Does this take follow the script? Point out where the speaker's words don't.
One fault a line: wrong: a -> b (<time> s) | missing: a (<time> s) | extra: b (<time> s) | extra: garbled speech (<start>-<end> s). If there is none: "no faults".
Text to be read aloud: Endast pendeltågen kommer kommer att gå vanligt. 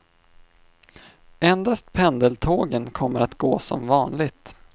missing: kommer (3.2 s)
extra: som (3.6 s)